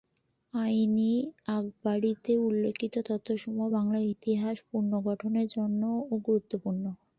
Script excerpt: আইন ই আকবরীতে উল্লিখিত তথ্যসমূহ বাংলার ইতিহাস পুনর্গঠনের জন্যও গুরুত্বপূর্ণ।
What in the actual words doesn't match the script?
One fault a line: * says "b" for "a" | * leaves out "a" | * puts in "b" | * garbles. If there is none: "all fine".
all fine